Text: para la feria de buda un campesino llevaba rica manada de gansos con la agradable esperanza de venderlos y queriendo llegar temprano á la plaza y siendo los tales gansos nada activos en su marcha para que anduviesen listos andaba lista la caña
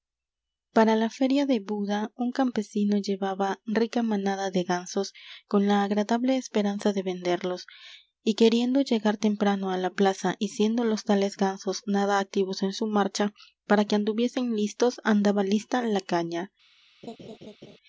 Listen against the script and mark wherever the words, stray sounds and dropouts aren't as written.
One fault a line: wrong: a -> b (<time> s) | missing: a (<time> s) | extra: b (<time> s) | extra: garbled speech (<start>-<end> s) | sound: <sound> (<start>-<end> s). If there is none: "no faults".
sound: laugh (17.0-17.8 s)